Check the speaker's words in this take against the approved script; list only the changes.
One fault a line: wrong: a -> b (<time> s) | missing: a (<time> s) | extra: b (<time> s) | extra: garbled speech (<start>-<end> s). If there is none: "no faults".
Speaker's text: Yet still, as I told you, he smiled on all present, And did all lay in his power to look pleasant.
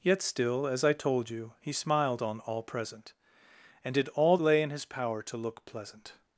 no faults